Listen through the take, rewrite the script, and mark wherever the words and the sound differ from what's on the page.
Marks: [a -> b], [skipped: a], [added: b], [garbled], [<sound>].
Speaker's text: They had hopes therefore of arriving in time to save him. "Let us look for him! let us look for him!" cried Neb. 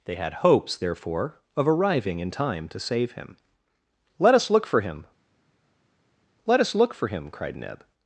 They had hopes therefore of arriving in time to save him. "Let us look for him! let us look for him!" cried Neb.